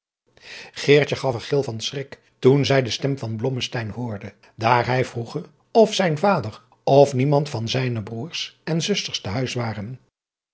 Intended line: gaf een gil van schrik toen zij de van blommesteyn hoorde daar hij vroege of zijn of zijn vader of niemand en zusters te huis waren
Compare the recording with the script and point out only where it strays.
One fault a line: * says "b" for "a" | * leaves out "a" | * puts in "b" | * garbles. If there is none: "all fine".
* puts in "stem"
* puts in "vader"
* says "niemand van zijne broêrs" for "zijn vader of niemand"